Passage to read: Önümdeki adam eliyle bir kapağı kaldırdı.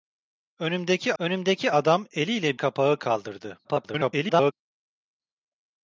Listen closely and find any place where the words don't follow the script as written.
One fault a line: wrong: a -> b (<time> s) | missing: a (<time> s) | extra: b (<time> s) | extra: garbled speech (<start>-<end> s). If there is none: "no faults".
extra: önümdeki (1.2 s)
missing: bir (2.6 s)
extra: garbled speech (3.6-4.5 s)